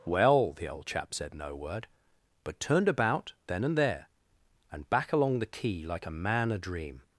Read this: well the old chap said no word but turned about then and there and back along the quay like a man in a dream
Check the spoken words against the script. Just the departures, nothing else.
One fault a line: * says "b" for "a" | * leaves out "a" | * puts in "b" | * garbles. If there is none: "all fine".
* leaves out "in"